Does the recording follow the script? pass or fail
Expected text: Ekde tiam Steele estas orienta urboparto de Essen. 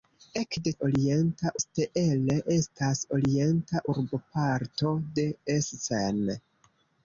fail